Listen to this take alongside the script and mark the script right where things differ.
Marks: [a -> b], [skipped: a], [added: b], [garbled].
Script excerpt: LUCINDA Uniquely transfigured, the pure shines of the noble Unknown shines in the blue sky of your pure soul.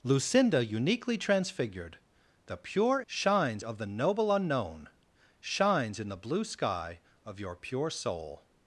LUCINDA Uniquely transfigured, the pure shines of the noble Unknown shines in the blue sky of your pure soul.